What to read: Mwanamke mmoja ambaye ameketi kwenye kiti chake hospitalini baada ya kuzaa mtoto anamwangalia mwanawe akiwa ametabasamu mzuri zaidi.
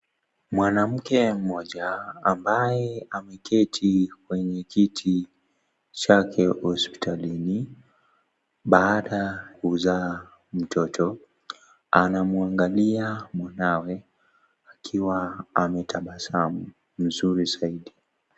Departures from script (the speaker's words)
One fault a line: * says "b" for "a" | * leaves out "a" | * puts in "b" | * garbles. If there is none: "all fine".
* leaves out "ya"